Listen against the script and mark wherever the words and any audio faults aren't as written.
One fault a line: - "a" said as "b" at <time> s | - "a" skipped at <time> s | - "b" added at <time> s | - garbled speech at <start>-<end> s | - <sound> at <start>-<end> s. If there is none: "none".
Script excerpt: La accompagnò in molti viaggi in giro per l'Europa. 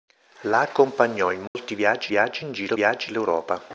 - dropout at 1.5-1.5 s
- "viaggi" added at 2.1 s
- "per" said as "viaggi" at 2.7 s